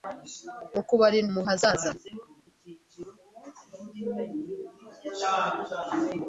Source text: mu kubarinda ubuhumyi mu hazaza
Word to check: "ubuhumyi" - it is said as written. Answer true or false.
false